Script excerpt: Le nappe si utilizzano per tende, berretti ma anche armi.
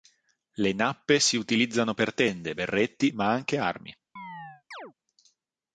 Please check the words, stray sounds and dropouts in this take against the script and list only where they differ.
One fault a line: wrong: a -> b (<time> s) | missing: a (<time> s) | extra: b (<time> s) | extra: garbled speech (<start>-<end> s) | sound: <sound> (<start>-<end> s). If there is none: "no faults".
sound: chirp (4.2-4.9 s)